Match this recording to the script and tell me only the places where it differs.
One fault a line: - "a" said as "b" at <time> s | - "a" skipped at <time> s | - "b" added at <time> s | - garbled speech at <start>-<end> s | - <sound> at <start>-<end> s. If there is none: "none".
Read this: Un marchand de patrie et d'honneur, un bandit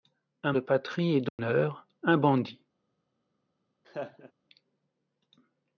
- "marchand" skipped at 0.5 s
- dropout at 1.3-1.4 s
- laugh at 3.8-4.3 s